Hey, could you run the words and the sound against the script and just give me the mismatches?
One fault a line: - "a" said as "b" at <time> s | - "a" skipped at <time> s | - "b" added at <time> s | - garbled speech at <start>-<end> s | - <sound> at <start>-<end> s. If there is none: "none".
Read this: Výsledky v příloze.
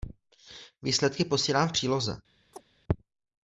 - "posílám" added at 1.2 s
- chirp at 2.5-2.6 s